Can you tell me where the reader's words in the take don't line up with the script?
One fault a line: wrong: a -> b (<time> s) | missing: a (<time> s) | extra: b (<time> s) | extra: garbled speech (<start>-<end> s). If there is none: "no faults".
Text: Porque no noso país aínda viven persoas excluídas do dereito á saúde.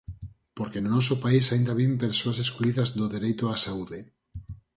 no faults